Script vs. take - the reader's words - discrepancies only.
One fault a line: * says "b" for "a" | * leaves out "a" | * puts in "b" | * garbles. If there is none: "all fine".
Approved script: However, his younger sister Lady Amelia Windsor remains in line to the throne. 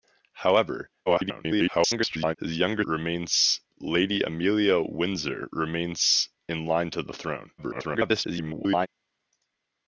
* garbles
* says "remains" for "sister"
* garbles